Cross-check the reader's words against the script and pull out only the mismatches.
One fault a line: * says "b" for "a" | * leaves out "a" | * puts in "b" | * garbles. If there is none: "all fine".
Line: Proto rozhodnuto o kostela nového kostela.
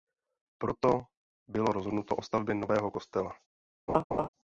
* puts in "bylo"
* says "stavbě" for "kostela"